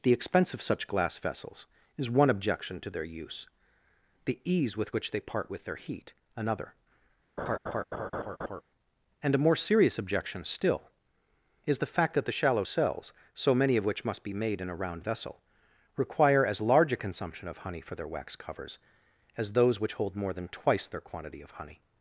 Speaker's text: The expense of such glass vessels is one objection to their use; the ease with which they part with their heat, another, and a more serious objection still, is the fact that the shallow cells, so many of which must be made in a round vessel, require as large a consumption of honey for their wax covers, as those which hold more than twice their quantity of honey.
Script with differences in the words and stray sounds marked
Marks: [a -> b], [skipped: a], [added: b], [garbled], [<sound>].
The expense of such glass vessels is one objection to their use; the ease with which they part with their heat, another, [laugh] and a more serious objection still, is the fact that the shallow cells, so many of which must be made in a round vessel, require as large a consumption of honey for their wax covers, as those which hold more than twice their quantity of honey.